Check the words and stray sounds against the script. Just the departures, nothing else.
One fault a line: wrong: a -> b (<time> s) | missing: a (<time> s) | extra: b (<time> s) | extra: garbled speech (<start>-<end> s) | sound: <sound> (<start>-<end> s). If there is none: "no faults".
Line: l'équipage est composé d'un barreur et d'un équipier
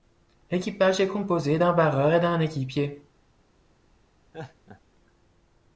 sound: laugh (4.3-4.8 s)